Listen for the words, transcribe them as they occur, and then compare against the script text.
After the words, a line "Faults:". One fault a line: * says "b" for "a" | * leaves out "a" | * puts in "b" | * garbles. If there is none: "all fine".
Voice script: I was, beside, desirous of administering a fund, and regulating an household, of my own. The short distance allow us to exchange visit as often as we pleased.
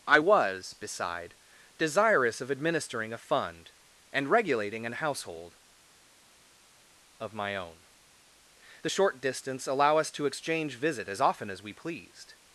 I was, beside, desirous of administering a fund, and regulating an household, of my own. The short distance allow us to exchange visit as often as we pleased.
Faults:
all fine